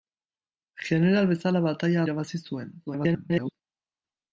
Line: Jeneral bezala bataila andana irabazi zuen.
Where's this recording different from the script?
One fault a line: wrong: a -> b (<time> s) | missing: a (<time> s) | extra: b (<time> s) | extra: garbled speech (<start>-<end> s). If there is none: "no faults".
missing: andana (2.0 s)
extra: garbled speech (2.9-3.5 s)